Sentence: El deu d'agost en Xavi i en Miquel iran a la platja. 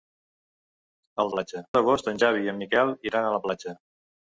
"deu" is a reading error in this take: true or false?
true